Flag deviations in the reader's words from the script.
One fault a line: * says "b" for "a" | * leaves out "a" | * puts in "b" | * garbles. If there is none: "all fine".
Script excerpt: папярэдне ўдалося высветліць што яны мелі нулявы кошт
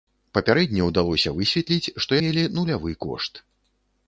* leaves out "яны"